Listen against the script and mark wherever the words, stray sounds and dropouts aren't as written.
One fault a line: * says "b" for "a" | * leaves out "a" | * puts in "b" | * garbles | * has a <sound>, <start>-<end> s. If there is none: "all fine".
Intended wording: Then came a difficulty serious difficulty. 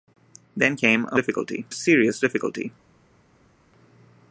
all fine